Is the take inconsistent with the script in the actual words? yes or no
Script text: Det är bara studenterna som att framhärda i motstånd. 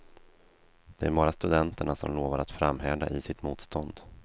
yes